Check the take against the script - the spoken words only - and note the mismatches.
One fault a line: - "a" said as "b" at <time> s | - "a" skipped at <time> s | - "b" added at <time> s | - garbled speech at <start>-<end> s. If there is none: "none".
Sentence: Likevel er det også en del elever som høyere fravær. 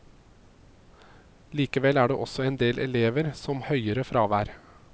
none